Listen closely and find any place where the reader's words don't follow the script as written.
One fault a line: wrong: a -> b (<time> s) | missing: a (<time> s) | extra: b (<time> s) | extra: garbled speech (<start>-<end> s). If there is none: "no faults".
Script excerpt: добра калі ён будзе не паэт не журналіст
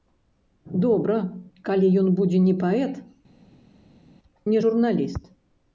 no faults